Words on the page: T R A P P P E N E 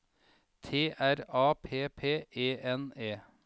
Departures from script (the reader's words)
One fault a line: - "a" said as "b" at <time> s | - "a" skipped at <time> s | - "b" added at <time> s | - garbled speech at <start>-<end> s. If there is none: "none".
- "P" skipped at 2.3 s